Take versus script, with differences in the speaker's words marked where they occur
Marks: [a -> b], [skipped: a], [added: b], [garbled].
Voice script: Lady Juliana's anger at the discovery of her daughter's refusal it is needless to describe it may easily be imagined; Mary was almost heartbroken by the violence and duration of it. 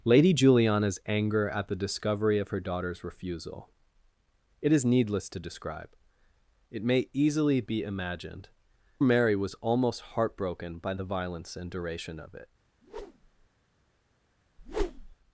Lady Juliana's anger at the discovery of her daughter's refusal it is needless to describe it may easily be imagined; Mary was almost heartbroken by the violence and duration of it.